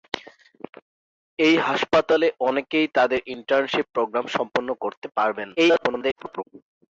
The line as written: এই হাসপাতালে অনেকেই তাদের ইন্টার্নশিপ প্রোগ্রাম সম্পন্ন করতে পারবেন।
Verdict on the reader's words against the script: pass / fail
fail